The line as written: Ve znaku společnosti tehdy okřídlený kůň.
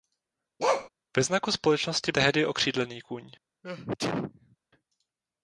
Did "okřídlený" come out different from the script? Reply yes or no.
no